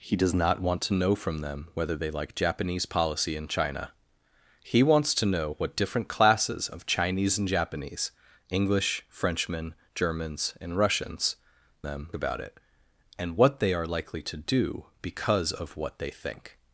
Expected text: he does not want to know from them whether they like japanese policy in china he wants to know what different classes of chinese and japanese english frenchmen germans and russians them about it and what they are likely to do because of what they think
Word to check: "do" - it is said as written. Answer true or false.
true